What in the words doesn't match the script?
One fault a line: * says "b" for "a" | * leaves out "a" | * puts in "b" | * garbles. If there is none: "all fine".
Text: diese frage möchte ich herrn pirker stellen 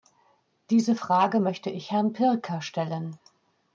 all fine